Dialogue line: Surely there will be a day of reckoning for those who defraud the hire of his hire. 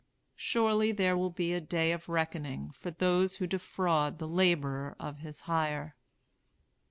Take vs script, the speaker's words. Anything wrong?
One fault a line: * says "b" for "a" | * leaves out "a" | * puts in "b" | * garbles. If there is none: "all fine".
* says "laborer" for "hire"